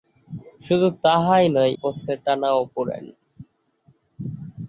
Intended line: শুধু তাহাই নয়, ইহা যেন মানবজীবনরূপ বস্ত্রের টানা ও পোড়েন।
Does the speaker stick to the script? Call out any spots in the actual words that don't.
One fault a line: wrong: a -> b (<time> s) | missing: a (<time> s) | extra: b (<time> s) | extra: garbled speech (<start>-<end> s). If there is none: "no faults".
missing: ইহা যেন মানবজীবনরূপ (1.7 s)